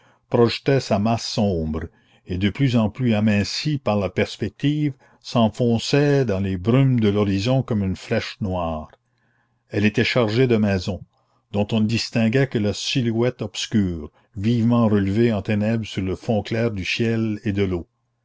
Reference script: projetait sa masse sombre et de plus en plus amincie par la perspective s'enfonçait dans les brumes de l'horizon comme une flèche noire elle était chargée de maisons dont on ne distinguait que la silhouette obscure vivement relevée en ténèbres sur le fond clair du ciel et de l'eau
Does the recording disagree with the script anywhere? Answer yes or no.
no